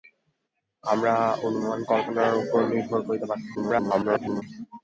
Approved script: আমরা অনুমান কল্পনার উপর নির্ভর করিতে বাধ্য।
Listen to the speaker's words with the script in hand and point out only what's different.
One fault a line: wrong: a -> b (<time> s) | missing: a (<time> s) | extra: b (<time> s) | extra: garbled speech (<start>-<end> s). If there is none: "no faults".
extra: garbled speech (3.5-4.4 s)